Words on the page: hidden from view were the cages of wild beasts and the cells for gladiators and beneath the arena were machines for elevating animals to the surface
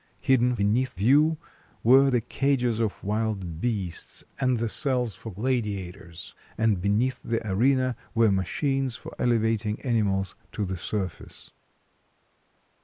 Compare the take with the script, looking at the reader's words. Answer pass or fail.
fail